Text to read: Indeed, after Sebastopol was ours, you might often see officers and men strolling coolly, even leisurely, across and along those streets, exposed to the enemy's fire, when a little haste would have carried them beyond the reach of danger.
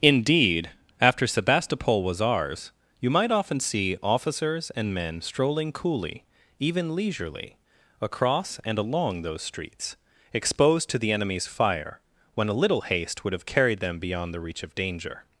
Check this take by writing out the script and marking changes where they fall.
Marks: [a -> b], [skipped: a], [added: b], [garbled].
Indeed, after Sebastopol was ours, you might often see officers and men strolling coolly, even leisurely, across and along those streets, exposed to the enemy's fire, when a little haste would have carried them beyond the reach of danger.